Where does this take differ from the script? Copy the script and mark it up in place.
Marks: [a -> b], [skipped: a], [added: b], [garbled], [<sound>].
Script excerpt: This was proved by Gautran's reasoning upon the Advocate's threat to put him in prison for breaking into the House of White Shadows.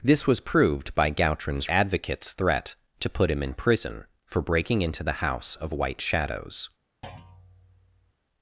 This was proved by Gautran's [skipped: reasoning upon the] Advocate's threat to put him in prison for breaking into the House of White Shadows. [thud]